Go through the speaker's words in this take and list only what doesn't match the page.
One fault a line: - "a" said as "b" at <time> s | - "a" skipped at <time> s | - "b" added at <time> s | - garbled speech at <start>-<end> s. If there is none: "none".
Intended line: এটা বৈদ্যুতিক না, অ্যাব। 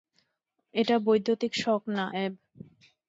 - "শক" added at 1.6 s